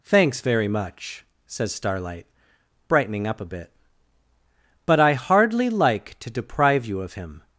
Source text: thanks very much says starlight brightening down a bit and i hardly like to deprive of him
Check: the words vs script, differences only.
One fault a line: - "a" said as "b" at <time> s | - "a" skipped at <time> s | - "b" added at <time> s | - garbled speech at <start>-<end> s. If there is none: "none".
- "down" said as "up" at 3.3 s
- "and" said as "but" at 4.8 s
- "you" added at 6.8 s